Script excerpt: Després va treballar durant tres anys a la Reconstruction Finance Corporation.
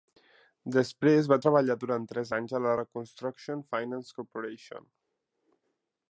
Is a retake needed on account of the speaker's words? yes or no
no